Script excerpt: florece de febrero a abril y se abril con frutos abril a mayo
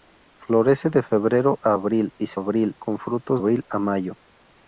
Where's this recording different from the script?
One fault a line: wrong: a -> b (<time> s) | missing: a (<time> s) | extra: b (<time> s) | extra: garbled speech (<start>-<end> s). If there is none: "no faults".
no faults